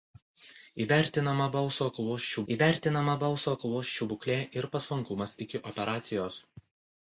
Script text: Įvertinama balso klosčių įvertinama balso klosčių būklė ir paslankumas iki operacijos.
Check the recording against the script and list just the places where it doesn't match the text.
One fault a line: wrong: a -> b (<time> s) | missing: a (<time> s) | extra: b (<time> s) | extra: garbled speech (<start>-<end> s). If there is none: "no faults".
no faults